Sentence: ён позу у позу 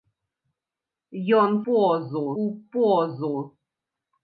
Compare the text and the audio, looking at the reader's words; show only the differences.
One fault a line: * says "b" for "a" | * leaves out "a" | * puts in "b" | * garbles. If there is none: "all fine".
all fine